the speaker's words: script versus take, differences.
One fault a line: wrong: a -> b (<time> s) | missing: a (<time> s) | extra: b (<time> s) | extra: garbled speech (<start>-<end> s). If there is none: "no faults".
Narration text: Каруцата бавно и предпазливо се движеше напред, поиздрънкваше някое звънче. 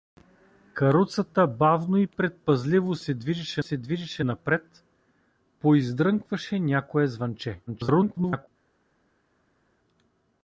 extra: се движеше (3.6 s)
extra: garbled speech (7.7-8.5 s)